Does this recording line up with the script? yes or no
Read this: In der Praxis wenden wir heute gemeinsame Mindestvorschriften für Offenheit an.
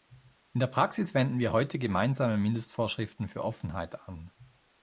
yes